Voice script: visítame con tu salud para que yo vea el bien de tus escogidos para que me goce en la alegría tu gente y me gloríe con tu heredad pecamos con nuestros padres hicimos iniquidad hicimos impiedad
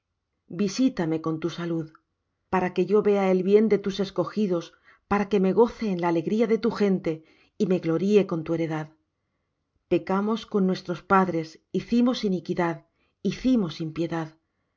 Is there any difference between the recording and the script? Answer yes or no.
yes